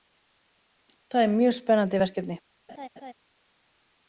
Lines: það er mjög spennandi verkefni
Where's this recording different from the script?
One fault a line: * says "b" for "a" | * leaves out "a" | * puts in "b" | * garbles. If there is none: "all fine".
all fine